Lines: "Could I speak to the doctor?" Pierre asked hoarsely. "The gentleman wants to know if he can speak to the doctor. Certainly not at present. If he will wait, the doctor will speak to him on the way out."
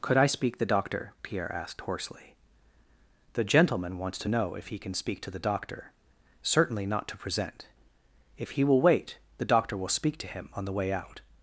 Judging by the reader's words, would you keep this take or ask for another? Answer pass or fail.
fail